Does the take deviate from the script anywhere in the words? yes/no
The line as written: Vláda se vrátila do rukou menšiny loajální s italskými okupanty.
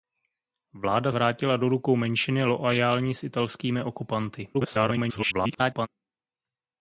yes